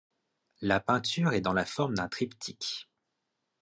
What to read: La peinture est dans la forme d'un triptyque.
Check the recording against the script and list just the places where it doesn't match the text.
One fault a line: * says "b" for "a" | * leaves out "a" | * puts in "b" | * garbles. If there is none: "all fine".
all fine